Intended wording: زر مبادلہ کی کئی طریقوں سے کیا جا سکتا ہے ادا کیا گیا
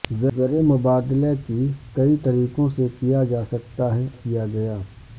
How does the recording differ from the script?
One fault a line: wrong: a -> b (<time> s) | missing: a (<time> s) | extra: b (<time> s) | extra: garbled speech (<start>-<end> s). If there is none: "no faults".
missing: ادا (4.1 s)